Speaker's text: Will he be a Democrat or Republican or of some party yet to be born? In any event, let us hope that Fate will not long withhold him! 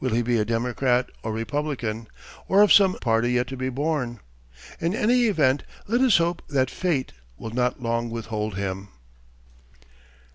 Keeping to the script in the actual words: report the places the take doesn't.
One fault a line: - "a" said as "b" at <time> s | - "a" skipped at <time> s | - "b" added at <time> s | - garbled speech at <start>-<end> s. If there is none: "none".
none